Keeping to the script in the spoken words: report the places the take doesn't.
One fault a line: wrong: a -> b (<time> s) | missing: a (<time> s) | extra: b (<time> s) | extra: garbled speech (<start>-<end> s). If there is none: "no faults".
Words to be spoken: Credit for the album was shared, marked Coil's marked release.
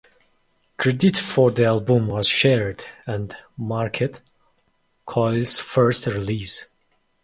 extra: and (3.0 s)
wrong: marked -> first (5.6 s)